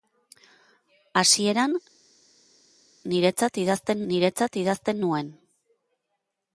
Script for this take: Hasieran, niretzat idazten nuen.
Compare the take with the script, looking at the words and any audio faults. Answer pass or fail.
fail